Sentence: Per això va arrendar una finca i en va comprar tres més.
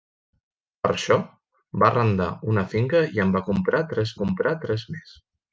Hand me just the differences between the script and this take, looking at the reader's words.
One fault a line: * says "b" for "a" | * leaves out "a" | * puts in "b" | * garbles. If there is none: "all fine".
* puts in "comprar tres"